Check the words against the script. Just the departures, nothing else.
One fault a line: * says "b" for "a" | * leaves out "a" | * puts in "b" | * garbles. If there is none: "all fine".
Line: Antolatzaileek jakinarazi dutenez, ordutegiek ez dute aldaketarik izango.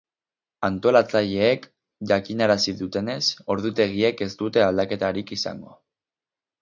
all fine